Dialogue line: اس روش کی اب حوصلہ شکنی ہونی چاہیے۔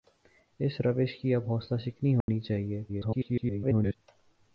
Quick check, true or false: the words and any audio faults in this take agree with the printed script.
false